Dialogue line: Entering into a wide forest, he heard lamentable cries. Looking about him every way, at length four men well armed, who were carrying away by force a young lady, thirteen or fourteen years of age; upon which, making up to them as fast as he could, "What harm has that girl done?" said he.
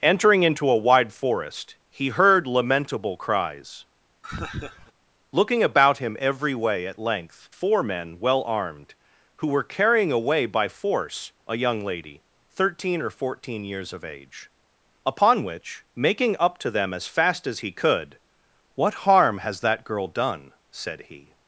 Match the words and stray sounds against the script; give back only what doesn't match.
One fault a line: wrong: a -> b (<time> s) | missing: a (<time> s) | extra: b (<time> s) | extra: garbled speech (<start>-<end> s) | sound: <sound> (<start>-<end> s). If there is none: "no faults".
sound: laugh (4.2-4.9 s)